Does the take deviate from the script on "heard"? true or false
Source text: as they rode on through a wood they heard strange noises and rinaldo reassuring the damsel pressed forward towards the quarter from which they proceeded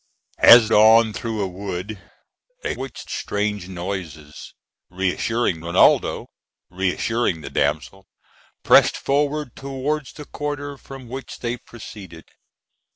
true